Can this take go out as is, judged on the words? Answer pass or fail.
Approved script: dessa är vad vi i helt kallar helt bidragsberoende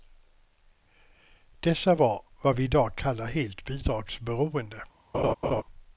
fail